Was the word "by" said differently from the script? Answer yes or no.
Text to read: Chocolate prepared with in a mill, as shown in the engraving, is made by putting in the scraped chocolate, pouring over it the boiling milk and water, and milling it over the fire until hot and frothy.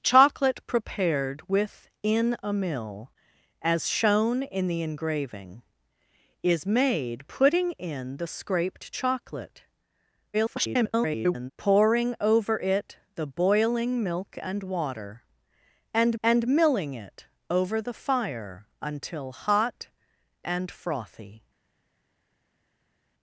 yes